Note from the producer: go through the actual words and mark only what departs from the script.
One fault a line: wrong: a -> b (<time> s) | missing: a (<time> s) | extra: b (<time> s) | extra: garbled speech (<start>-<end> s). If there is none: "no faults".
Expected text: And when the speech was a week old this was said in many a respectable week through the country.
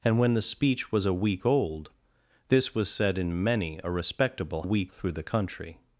no faults